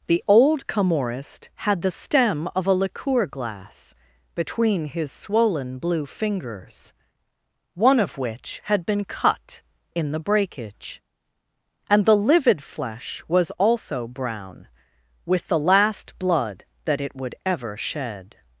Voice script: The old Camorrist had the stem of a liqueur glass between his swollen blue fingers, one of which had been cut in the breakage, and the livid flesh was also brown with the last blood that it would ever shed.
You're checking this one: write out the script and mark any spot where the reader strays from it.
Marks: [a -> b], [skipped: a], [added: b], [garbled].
The old Camorrist had the stem of a liqueur glass between his swollen blue fingers, one of which had been cut in the breakage, and the livid flesh was also brown with the last blood that it would ever shed.